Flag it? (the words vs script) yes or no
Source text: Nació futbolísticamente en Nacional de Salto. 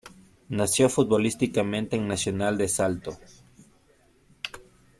no